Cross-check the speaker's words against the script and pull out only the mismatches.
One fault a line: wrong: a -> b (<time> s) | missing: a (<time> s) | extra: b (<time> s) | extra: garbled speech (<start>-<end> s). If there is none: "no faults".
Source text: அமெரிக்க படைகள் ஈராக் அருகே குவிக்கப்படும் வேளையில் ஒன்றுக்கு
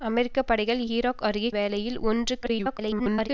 missing: குவிக்கப்படும் (1.5 s)
extra: garbled speech (2.4-3.3 s)